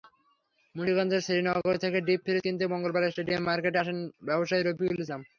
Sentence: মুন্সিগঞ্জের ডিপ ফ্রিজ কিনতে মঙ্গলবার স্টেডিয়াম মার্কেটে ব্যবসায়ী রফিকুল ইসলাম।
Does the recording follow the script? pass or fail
fail